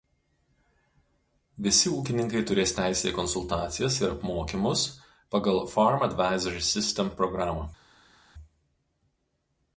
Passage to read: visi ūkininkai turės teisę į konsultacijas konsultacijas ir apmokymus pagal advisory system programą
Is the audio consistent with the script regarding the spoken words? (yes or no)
no